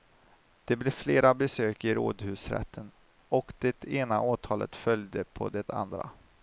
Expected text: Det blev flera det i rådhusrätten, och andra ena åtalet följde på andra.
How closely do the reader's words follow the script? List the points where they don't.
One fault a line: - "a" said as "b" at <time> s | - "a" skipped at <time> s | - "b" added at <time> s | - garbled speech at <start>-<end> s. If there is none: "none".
- "det" said as "besök" at 1.3 s
- "andra" said as "det" at 3.6 s
- "det" added at 5.5 s